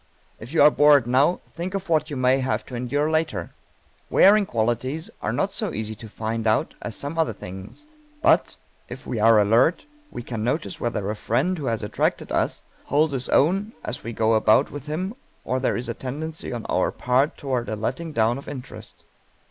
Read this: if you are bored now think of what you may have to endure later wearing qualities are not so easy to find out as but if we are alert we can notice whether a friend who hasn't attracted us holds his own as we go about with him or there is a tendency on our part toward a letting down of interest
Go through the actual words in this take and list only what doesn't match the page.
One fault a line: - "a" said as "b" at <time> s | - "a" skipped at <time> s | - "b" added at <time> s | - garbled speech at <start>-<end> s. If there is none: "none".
- "some other things" added at 7.0 s
- "hasn't" said as "has" at 11.7 s